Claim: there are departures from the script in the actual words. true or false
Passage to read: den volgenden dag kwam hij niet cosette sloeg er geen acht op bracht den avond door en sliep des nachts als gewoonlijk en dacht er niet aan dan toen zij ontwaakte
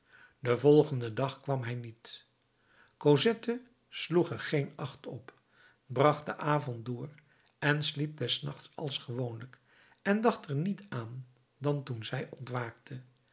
false